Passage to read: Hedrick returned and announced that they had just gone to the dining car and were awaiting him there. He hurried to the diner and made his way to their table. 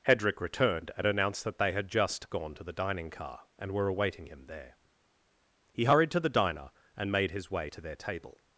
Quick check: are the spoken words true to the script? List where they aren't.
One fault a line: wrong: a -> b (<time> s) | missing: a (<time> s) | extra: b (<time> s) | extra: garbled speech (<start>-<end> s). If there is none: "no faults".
no faults